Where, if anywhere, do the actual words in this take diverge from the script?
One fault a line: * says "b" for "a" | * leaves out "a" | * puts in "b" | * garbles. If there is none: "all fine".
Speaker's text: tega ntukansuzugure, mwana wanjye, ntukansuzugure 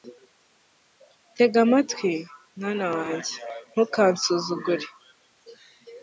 * says "amatwi" for "ntukansuzugure"